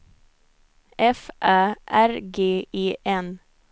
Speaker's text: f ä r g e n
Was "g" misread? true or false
false